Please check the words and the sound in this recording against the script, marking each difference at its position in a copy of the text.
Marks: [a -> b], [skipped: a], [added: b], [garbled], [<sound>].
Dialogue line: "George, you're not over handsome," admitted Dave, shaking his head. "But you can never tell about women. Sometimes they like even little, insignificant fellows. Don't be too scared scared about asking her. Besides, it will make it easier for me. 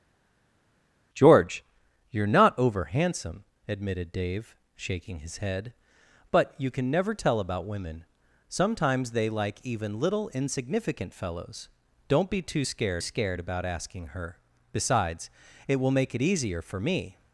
"George, you're not over handsome," admitted Dave, shaking his head. "But you can never tell about women. Sometimes they like even little, insignificant fellows. Don't be too scared scared about asking her. Besides, it will make it easier for me.